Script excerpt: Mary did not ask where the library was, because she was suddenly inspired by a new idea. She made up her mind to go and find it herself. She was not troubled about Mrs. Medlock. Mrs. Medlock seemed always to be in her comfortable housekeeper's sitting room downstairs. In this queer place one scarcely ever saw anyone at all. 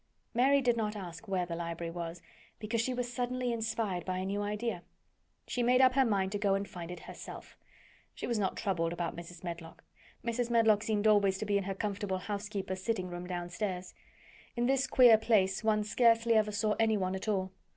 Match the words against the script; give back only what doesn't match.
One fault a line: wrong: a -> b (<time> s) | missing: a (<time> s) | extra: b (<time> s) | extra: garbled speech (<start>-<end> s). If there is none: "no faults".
no faults